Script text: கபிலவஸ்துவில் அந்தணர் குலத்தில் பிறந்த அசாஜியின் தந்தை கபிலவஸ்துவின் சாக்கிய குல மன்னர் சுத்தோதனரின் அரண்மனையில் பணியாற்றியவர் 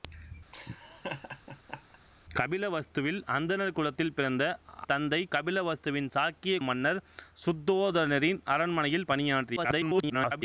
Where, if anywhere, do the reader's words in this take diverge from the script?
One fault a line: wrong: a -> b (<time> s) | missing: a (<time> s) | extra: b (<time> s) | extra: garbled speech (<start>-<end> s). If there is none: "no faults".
missing: அசாஜியின் (4.4 s)
missing: குல (6.6 s)
extra: garbled speech (9.6-10.4 s)